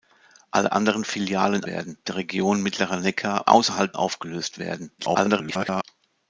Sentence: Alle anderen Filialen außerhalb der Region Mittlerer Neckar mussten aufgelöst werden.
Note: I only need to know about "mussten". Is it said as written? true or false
false